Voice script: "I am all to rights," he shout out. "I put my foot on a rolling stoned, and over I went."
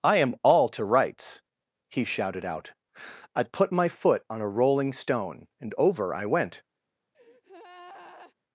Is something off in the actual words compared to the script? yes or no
yes